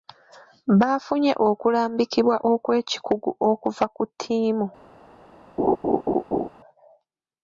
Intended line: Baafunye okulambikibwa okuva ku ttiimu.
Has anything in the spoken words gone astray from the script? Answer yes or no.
yes